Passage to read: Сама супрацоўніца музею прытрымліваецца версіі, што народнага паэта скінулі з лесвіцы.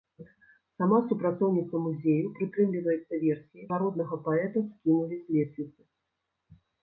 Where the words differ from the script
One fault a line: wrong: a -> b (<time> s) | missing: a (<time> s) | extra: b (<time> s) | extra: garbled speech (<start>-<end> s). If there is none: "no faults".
missing: што (3.7 s)